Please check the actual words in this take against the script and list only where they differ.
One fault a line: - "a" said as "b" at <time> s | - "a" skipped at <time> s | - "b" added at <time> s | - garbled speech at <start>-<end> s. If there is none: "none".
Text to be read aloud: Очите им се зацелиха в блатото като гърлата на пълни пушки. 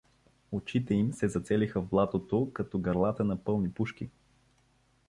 none